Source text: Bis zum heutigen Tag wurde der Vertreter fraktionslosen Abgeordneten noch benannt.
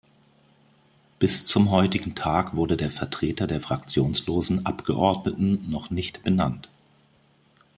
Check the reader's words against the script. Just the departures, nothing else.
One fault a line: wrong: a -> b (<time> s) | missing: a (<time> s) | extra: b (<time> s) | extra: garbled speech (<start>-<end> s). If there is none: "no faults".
extra: der (3.5 s)
extra: nicht (5.9 s)